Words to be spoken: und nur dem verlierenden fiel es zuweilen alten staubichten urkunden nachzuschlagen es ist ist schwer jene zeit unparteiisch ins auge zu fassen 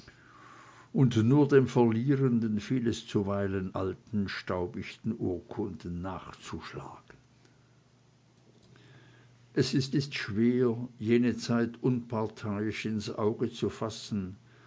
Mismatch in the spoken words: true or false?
false